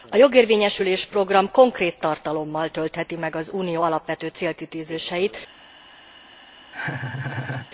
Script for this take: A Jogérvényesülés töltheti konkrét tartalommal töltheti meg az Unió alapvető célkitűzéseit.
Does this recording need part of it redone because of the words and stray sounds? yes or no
yes